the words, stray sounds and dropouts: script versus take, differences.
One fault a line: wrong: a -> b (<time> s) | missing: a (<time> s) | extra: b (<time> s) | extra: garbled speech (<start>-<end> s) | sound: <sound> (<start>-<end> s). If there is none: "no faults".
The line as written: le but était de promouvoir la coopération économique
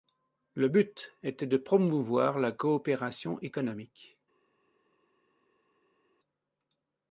no faults